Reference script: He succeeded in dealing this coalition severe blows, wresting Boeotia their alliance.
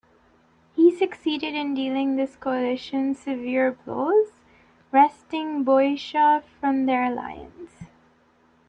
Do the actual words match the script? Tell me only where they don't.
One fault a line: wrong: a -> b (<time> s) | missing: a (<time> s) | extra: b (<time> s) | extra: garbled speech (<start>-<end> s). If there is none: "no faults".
extra: from (6.6 s)